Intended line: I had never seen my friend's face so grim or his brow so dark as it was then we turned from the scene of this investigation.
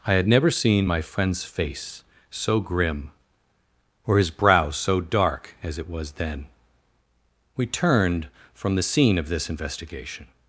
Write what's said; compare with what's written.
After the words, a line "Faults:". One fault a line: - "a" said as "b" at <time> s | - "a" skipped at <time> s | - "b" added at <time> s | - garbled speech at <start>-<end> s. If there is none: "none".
I had never seen my friend's face so grim or his brow so dark as it was then we turned from the scene of this investigation.
Faults:
none